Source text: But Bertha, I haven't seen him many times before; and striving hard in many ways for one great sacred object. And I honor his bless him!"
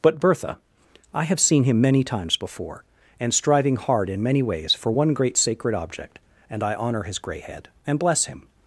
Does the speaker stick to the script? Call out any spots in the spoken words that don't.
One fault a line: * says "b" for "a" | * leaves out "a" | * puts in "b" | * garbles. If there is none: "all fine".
* says "have" for "haven't"
* puts in "grey head and"